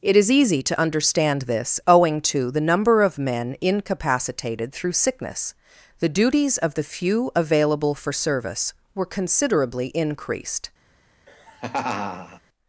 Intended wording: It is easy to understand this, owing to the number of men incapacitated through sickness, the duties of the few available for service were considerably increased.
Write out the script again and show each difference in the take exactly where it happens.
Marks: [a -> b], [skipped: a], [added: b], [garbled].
It is easy to understand this, owing to the number of men incapacitated through sickness, the duties of the few available for service were considerably increased.